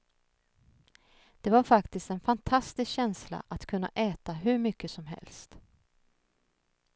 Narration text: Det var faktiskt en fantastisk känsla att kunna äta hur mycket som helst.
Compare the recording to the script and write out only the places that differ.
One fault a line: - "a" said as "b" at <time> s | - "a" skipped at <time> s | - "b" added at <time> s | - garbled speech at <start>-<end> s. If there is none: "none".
none